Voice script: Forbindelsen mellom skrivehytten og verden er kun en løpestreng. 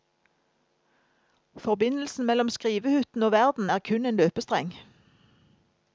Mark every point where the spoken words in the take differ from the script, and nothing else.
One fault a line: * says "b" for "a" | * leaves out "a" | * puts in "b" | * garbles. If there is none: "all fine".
all fine